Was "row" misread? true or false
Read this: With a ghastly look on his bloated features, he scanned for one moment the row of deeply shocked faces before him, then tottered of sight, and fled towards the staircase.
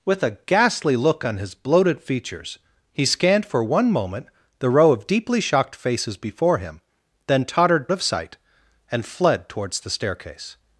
false